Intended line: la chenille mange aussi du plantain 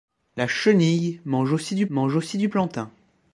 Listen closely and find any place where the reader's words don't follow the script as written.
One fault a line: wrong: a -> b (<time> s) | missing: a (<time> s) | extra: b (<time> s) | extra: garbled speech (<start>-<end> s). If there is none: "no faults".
extra: mange aussi du (1.9 s)